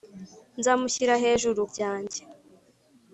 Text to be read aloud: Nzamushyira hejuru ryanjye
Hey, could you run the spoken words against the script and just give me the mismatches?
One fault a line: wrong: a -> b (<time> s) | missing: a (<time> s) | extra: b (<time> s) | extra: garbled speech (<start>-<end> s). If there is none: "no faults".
no faults